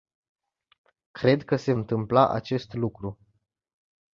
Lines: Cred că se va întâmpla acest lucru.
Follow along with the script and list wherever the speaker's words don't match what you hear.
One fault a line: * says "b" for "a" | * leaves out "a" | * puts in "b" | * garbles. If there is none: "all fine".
* leaves out "va"